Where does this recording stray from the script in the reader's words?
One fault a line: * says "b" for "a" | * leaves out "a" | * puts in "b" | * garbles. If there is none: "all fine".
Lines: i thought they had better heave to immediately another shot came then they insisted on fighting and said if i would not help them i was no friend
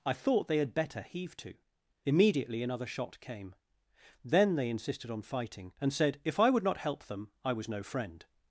all fine